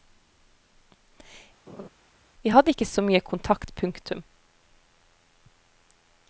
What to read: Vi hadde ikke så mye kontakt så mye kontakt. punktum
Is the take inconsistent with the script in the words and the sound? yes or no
yes